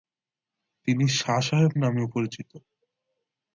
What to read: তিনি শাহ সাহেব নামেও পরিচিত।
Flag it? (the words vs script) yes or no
no